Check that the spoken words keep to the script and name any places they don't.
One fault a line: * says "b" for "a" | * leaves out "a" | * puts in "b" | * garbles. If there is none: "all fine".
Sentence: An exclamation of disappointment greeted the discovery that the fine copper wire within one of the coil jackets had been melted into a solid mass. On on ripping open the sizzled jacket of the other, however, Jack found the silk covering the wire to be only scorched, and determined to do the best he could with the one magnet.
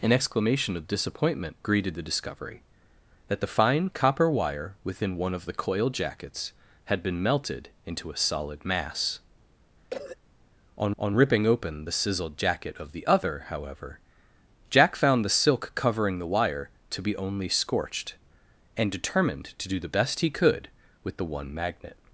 all fine